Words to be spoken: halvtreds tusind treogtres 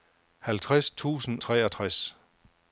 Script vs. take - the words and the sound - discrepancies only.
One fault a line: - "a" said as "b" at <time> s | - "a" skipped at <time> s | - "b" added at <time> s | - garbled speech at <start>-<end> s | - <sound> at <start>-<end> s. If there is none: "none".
none